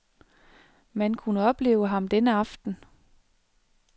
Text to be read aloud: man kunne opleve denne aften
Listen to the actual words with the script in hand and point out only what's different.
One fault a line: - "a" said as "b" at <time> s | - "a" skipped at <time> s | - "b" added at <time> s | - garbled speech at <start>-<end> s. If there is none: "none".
- "ham" added at 1.9 s